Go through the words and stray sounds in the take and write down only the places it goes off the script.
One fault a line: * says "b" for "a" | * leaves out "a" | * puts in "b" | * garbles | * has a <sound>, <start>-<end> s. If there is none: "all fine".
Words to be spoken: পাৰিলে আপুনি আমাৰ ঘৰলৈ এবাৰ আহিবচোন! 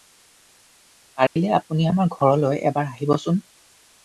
* has a dropout, 1.3-1.4 s